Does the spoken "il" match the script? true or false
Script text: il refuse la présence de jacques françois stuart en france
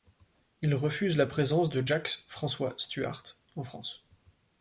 true